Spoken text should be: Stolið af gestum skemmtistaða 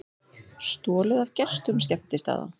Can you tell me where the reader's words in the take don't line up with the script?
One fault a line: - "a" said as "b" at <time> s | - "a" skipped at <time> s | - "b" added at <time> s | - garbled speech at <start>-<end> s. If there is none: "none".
none